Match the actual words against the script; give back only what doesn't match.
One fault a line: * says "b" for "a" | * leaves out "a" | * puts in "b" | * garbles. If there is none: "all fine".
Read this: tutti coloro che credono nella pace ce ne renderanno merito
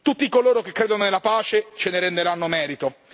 all fine